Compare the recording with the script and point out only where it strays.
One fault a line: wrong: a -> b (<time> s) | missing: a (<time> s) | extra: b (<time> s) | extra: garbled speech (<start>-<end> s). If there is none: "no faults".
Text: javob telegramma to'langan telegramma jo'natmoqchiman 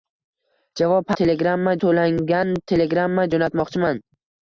no faults